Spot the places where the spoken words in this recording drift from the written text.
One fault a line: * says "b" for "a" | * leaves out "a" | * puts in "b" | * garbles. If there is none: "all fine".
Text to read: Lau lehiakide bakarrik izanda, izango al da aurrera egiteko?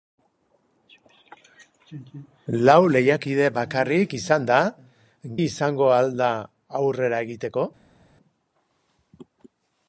all fine